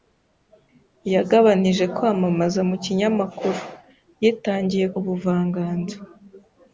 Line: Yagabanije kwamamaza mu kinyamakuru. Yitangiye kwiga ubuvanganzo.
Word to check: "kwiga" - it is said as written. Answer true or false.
false